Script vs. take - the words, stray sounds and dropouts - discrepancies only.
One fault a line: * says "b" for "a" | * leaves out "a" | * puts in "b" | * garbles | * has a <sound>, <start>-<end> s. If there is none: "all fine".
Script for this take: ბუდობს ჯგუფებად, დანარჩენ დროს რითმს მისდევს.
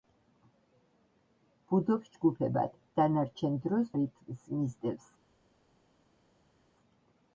all fine